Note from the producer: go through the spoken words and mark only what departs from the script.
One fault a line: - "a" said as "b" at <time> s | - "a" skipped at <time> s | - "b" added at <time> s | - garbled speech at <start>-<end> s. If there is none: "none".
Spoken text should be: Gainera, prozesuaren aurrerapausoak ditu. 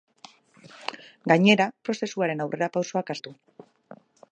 none